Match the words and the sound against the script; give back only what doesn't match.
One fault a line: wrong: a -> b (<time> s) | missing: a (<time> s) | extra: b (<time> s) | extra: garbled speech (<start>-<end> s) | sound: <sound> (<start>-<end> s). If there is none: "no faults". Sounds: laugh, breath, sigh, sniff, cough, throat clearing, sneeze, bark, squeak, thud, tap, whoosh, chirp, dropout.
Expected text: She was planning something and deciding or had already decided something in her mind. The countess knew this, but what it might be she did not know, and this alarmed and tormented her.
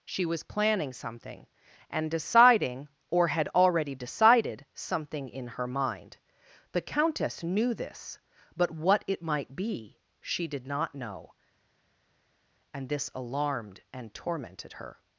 no faults